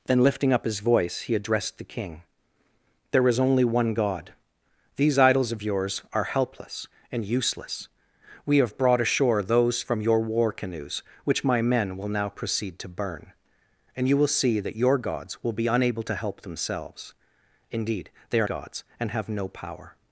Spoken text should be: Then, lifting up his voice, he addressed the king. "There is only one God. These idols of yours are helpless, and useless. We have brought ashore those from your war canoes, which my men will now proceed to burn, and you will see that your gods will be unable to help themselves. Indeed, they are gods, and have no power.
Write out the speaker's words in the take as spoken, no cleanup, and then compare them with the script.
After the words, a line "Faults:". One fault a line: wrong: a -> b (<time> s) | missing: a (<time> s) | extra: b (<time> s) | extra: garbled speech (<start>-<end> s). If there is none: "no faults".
Then, lifting up his voice, he addressed the king. "There is only one God. These idols of yours are helpless, and useless. We have brought ashore those from your war canoes, which my men will now proceed to burn, and you will see that your gods will be unable to help themselves. Indeed, they are gods, and have no power.
Faults:
no faults